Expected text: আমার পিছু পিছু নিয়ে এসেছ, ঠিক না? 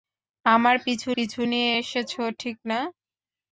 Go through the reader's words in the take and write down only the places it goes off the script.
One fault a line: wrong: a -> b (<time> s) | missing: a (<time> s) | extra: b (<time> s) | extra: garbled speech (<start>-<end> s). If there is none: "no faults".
no faults